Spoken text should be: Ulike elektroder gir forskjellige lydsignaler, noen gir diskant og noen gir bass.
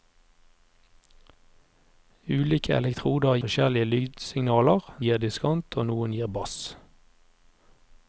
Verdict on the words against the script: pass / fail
fail